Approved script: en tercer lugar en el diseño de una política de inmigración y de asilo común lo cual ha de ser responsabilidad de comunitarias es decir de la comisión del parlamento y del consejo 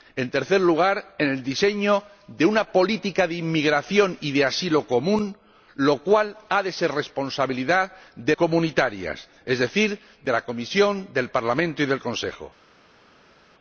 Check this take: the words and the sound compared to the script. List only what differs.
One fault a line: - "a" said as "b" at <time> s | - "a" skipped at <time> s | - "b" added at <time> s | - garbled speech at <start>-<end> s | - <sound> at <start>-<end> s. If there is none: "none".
none